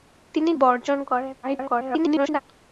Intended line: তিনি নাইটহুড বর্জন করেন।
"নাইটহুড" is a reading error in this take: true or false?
true